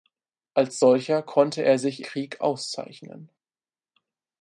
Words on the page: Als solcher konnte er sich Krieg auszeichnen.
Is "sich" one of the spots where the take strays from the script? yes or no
no